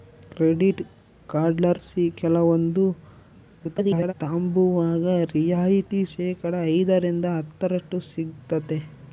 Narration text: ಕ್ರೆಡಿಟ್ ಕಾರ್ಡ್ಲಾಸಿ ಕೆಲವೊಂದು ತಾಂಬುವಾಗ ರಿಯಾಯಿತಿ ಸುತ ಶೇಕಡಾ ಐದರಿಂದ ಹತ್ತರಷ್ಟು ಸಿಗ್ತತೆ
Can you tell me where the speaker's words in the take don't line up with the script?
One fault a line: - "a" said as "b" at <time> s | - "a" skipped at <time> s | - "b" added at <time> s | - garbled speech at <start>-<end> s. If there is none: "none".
- garbled speech at 3.6-4.1 s
- "ಸುತ" skipped at 6.0 s